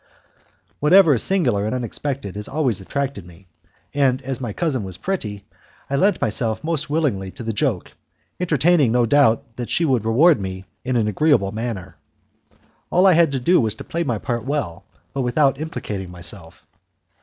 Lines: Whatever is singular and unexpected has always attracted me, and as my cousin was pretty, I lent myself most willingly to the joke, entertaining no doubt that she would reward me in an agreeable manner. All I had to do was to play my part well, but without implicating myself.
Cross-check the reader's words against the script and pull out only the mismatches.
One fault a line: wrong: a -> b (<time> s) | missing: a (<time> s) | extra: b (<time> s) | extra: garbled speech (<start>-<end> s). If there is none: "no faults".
no faults